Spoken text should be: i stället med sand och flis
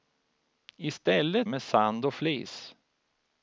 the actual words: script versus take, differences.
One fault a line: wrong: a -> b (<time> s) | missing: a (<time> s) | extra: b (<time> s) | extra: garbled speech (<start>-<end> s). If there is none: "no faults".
no faults